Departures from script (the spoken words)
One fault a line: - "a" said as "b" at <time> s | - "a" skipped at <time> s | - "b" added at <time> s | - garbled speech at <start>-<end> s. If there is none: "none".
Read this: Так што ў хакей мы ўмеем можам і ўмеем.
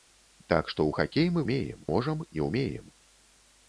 none